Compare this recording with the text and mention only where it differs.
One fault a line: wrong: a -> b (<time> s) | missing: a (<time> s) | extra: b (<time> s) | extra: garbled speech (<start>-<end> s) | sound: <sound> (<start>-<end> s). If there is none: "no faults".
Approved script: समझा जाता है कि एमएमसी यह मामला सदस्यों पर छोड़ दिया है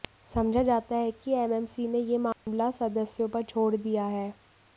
extra: ने (1.9 s)
sound: dropout (2.3-2.5 s)